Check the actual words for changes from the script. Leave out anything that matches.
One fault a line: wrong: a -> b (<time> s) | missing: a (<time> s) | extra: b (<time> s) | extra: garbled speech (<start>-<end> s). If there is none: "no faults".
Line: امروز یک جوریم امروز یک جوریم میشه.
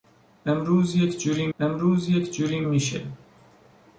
no faults